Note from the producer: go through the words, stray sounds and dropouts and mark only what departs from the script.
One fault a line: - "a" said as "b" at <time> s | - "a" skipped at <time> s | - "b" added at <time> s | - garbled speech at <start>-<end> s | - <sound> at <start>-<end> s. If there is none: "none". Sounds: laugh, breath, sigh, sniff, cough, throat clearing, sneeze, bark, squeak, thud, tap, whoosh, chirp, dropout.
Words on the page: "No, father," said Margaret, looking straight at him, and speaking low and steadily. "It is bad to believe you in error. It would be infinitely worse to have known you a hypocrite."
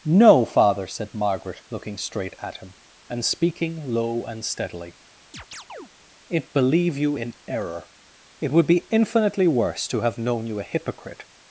- chirp at 5.3-5.9 s
- "is bad to" skipped at 6.5 s